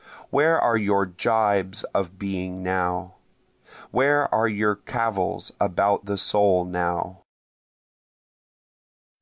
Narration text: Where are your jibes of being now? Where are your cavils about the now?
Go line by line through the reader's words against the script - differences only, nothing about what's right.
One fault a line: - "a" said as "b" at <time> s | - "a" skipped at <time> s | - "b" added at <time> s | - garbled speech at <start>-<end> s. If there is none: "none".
- "soul" added at 6.2 s